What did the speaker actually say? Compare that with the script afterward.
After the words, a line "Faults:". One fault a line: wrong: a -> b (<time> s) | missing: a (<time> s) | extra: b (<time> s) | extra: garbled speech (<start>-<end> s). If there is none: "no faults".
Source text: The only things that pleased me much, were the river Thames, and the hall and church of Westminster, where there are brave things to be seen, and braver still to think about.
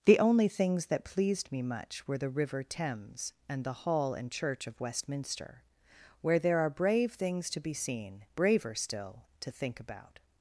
The only things that pleased me much, were the river Thames, and the hall and church of Westminster, where there are brave things to be seen, braver still to think about.
Faults:
missing: and (8.2 s)